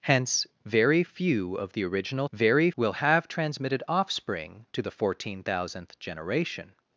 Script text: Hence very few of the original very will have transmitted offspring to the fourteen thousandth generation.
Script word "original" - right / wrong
right